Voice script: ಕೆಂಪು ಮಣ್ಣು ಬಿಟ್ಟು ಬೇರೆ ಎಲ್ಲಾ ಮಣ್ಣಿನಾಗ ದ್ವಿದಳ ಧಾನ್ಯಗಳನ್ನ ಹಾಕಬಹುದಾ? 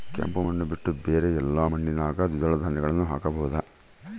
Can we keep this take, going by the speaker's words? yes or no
yes